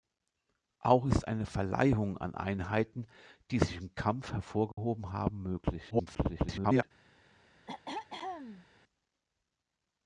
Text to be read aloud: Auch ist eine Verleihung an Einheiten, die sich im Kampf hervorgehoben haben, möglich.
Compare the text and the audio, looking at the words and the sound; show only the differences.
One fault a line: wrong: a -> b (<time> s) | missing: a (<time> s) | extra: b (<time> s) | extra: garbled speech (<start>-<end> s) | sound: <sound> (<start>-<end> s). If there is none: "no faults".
sound: dropout (4.7-4.8 s)
extra: garbled speech (5.9-6.8 s)
sound: throat clearing (7.7-8.7 s)